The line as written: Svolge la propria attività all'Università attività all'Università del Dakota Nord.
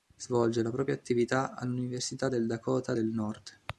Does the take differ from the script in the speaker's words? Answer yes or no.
yes